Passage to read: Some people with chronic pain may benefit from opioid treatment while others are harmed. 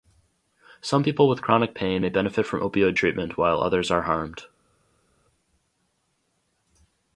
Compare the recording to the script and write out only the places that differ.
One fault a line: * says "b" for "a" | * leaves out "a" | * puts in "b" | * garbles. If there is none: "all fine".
all fine